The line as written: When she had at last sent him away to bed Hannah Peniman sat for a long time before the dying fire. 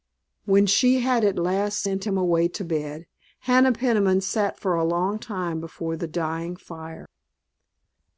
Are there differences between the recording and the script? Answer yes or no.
no